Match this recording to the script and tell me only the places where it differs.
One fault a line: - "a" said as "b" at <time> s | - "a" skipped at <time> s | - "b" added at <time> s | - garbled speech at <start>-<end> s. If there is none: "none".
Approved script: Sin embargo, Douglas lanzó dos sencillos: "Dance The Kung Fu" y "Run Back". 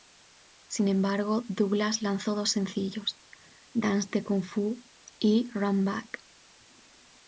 none